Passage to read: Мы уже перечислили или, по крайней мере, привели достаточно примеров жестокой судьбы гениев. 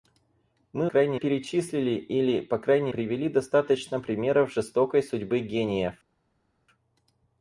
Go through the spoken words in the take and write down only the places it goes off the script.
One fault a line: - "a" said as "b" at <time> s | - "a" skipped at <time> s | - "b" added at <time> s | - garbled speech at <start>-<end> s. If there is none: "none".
- "уже" said as "крайней" at 0.8 s
- "мере" skipped at 2.9 s